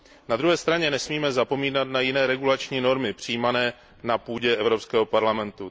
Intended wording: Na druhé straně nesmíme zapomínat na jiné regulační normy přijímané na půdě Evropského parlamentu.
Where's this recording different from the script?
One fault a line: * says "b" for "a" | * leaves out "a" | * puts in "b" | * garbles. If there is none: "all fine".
all fine